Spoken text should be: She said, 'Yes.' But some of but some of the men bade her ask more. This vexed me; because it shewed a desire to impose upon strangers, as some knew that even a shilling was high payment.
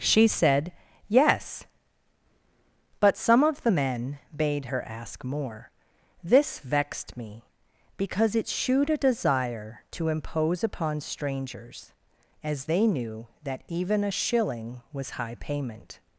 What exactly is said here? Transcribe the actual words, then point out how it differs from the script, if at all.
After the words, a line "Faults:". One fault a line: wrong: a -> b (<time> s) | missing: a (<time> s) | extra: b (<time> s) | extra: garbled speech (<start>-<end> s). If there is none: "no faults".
She said, 'Yes.' But some of the men bade her ask more. This vexed me; because it shewed a desire to impose upon strangers, as they knew that even a shilling was high payment.
Faults:
missing: but some of (3.6 s)
wrong: some -> they (12.6 s)